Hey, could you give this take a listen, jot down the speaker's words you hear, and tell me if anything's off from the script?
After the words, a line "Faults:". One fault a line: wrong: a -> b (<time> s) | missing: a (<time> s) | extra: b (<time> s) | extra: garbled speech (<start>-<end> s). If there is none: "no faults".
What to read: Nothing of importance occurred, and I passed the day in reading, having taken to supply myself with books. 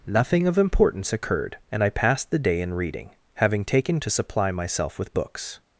Nothing of importance occurred, and I passed the day in reading, having taken to supply myself with books.
Faults:
no faults